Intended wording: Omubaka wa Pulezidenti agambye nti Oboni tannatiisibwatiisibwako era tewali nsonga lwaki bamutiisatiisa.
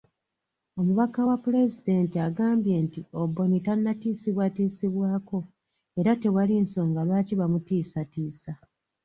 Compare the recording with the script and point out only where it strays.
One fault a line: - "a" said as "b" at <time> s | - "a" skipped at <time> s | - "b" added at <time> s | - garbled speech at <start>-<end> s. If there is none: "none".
none